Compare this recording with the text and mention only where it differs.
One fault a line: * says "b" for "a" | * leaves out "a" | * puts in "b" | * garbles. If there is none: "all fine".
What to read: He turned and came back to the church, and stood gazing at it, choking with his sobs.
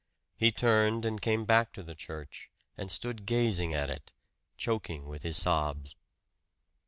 all fine